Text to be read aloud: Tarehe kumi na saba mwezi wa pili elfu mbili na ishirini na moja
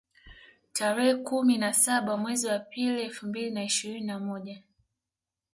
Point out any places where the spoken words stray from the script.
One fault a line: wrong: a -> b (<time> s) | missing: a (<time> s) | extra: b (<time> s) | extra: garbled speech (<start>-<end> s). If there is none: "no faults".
no faults